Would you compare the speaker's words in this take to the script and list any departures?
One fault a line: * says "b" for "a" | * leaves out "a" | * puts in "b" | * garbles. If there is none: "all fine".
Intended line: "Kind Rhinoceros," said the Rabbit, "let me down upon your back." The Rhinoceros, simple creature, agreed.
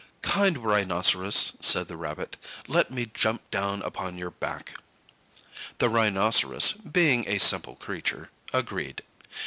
* puts in "jump"
* puts in "being a"